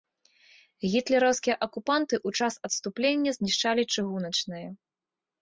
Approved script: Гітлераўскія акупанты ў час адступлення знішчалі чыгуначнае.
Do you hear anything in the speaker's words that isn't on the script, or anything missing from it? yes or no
no